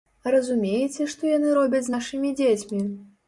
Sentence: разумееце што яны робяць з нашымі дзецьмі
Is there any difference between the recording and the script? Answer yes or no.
no